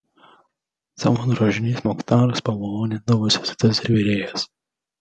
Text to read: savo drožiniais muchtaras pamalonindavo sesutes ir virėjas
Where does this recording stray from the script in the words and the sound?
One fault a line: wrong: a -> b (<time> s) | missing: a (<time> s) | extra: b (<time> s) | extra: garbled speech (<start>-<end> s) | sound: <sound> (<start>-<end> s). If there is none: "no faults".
no faults